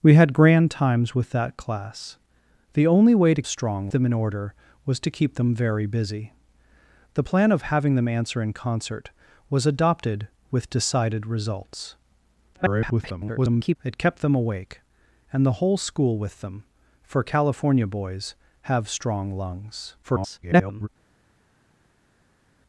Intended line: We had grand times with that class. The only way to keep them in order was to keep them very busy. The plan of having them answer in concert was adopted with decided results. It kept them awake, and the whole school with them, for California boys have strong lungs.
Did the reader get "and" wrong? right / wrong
right